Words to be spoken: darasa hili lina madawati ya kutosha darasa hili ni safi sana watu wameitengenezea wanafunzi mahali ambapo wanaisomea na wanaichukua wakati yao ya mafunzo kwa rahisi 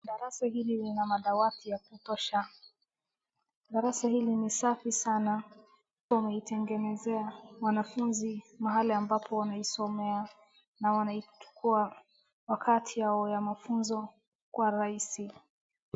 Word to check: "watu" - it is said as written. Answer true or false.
false